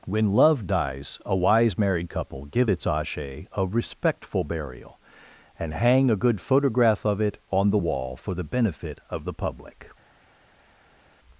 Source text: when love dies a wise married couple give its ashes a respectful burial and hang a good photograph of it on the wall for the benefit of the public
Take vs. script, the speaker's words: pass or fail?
fail